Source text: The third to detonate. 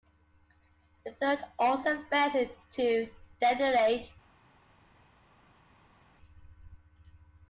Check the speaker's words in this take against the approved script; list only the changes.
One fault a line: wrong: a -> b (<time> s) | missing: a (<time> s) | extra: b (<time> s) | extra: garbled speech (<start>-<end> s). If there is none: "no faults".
extra: also failed (1.6 s)